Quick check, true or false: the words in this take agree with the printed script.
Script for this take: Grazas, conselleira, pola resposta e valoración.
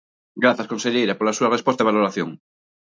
false